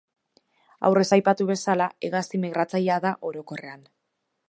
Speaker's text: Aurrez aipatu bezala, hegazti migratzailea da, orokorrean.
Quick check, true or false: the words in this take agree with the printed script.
true